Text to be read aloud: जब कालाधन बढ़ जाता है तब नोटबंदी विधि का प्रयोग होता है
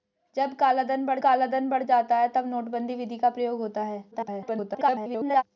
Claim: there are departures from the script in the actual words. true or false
true